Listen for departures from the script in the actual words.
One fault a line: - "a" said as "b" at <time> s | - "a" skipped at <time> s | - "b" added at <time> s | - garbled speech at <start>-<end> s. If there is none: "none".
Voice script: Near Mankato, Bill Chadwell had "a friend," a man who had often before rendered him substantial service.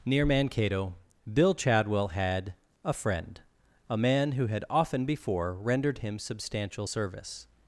none